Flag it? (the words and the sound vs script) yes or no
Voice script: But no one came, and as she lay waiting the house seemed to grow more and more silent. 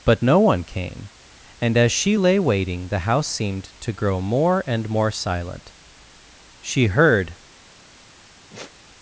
yes